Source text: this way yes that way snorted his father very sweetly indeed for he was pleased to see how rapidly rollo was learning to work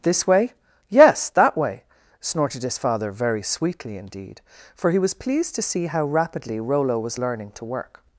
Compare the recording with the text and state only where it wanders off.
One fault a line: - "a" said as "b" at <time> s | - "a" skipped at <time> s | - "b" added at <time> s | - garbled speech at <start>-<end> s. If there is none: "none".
none